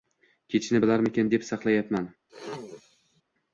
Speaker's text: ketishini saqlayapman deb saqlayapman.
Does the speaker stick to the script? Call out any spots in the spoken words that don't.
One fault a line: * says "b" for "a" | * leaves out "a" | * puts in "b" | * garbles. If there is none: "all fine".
* says "bilarmikin" for "saqlayapman"